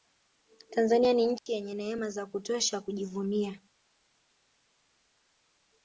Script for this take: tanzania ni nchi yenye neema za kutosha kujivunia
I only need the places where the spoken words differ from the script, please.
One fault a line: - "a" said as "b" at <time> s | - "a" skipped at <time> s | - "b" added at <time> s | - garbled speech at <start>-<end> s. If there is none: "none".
none